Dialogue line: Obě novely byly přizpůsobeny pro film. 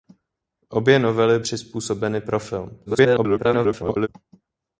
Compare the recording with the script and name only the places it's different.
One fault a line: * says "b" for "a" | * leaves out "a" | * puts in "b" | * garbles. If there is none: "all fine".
* leaves out "byly"
* garbles